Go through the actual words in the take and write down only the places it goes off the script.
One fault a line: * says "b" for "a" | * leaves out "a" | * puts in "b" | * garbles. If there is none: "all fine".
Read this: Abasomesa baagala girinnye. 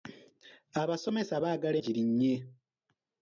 all fine